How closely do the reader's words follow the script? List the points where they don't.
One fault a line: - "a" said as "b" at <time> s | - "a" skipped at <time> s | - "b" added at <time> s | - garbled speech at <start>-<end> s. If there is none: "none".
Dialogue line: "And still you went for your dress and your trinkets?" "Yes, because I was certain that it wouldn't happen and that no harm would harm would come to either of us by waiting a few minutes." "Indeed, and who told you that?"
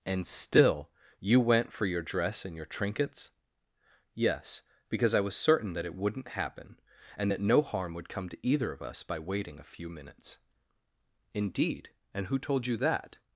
- "harm would" skipped at 8.1 s